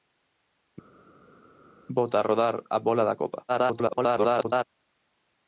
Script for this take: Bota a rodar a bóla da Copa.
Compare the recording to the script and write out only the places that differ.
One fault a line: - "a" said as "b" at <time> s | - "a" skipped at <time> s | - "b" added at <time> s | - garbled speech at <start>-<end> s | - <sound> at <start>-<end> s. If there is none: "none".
- garbled speech at 3.5-4.6 s